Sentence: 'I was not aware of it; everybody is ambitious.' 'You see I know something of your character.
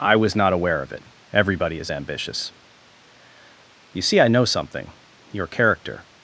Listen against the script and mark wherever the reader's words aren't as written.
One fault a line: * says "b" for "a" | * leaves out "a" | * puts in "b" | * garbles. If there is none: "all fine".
* leaves out "of"